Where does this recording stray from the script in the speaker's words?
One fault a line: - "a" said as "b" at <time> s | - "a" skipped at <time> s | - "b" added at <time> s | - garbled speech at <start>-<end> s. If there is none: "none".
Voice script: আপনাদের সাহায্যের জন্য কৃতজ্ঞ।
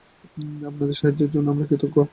- "আমরা" added at 1.5 s